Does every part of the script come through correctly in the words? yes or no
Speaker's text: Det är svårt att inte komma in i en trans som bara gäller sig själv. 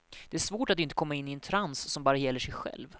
yes